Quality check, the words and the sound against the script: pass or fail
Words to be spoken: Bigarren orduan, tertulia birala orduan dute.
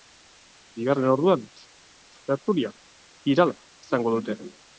fail